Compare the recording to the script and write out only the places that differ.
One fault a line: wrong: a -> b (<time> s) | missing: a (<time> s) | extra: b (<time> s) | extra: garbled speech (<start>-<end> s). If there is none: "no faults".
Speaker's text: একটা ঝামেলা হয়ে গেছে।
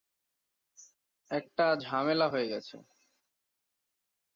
no faults